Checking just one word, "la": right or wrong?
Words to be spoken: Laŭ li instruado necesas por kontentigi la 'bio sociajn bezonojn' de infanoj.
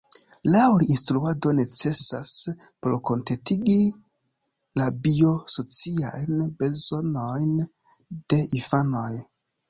right